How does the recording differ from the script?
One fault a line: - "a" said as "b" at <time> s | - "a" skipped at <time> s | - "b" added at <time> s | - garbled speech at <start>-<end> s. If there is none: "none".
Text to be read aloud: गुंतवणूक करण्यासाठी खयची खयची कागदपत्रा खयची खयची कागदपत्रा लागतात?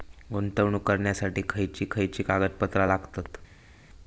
- "खयची खयची कागदपत्रा" skipped at 2.9 s